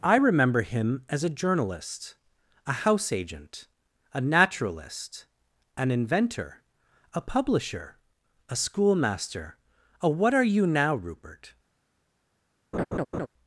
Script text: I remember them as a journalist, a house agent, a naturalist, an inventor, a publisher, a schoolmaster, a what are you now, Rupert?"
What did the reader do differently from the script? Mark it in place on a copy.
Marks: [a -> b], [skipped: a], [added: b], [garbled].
I remember [them -> him] as a journalist, a house agent, a naturalist, an inventor, a publisher, a schoolmaster, a what are you now, Rupert?"